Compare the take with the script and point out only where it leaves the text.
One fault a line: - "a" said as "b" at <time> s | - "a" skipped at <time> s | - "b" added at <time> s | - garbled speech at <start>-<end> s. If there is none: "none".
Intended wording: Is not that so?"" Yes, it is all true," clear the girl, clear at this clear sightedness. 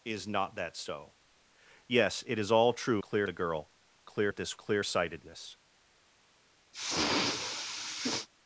none